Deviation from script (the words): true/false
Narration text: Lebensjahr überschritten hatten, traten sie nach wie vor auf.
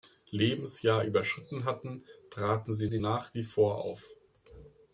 true